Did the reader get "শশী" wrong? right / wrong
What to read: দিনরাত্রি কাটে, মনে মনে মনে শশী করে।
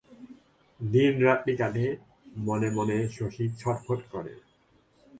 wrong